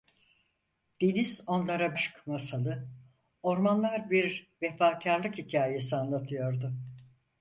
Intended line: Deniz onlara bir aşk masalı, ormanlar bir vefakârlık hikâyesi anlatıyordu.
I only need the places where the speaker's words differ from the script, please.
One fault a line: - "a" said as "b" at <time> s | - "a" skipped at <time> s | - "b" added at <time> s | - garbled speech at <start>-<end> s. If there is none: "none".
- "bir" skipped at 1.9 s